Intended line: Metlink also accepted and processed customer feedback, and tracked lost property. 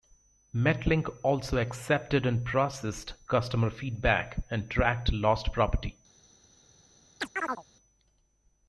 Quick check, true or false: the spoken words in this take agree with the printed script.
true